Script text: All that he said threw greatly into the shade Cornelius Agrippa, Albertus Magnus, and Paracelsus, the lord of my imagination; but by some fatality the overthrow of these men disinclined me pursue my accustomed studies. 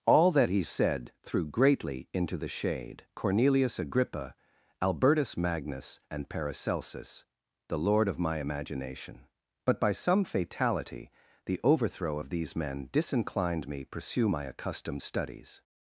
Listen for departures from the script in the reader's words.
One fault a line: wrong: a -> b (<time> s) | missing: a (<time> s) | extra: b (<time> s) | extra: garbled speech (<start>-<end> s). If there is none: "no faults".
no faults